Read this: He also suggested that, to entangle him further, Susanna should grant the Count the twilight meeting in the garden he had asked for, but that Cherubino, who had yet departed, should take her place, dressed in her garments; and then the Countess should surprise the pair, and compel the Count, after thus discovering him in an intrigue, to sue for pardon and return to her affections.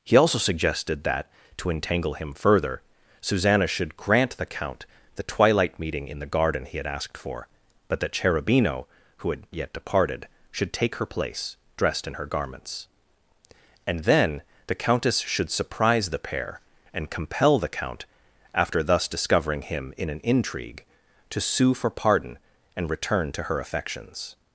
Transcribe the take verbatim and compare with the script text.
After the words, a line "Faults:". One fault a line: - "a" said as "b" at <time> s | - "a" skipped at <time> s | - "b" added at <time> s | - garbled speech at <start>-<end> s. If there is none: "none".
He also suggested that, to entangle him further, Susanna should grant the Count the twilight meeting in the garden he had asked for, but that Cherubino, who had yet departed, should take her place, dressed in her garments; and then the Countess should surprise the pair, and compel the Count, after thus discovering him in an intrigue, to sue for pardon and return to her affections.
Faults:
none